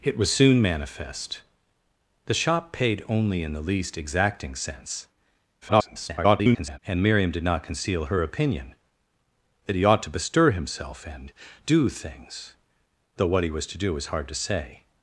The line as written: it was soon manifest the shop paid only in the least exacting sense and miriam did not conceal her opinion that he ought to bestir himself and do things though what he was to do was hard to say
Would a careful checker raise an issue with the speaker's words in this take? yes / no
yes